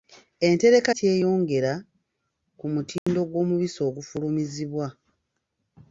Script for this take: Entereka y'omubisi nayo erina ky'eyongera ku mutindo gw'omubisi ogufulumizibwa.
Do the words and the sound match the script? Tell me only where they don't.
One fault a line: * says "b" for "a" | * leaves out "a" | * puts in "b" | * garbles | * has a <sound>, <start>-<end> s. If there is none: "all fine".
* leaves out "y'omubisi nayo erina"
* has a dropout, 3.0-3.1 s